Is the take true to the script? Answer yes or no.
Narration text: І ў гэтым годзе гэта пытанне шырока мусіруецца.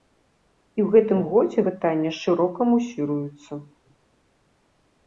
no